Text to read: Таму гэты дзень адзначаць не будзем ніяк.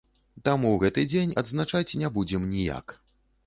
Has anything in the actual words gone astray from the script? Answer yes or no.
no